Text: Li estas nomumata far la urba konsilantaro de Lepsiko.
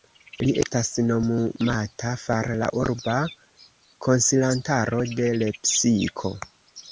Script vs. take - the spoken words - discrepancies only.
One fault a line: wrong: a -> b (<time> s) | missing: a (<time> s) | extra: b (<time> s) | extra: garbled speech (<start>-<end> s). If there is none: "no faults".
no faults